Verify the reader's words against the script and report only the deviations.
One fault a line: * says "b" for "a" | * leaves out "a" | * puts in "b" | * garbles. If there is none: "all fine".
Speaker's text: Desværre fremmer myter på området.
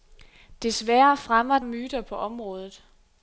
all fine